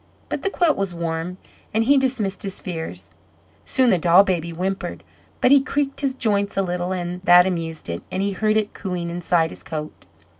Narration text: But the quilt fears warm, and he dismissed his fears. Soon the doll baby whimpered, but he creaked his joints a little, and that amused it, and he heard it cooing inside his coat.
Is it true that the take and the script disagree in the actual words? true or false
true